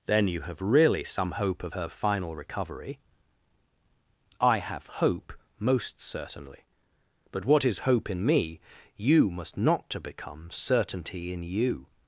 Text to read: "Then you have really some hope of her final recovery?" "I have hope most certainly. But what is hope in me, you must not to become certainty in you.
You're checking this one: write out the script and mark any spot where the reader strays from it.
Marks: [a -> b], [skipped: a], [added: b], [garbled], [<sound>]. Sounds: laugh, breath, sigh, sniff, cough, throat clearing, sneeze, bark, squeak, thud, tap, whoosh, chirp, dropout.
"Then you have really some hope of her final recovery?" "I have hope most certainly. But what is hope in me, you must not to become certainty in you.